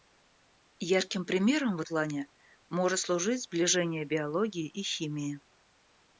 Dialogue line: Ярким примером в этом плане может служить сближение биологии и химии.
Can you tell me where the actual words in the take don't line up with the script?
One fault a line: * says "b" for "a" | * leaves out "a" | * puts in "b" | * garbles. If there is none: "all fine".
* leaves out "этом"